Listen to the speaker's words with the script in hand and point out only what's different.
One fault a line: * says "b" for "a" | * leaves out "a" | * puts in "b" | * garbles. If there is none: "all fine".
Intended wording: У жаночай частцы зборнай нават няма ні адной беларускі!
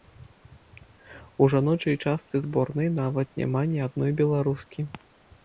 all fine